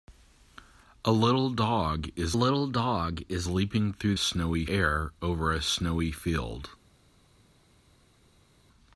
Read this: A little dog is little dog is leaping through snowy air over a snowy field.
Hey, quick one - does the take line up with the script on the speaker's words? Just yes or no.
yes